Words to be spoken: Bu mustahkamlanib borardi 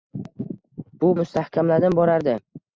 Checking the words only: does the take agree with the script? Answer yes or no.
yes